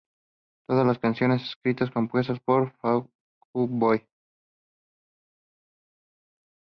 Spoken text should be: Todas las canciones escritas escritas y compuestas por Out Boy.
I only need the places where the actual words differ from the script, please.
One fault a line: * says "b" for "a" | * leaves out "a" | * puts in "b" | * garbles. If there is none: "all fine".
* leaves out "escritas"
* puts in "Fall"